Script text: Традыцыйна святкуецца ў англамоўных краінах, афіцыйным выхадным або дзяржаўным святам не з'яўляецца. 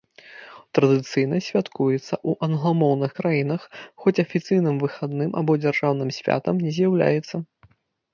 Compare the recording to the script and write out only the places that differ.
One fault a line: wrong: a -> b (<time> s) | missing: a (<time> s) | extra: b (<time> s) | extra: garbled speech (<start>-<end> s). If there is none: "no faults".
extra: хоць (4.0 s)